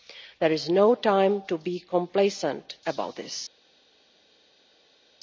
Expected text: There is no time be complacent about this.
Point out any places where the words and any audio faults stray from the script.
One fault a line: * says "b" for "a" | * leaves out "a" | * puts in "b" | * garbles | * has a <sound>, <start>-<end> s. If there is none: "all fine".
* puts in "to"